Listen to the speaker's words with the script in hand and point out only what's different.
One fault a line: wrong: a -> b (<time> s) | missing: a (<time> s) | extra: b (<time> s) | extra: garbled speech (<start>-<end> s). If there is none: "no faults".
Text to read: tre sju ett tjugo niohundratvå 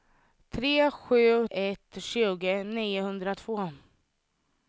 no faults